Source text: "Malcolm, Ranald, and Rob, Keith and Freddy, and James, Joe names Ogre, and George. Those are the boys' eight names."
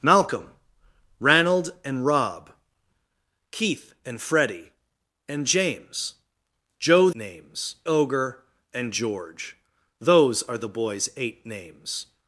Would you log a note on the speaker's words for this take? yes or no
no